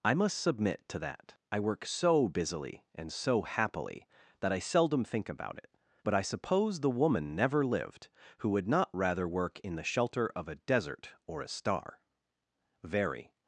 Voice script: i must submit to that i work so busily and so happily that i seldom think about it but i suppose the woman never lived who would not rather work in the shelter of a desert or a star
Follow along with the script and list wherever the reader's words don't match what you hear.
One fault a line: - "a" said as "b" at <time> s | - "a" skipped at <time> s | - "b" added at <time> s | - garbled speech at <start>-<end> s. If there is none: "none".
- "very" added at 12.8 s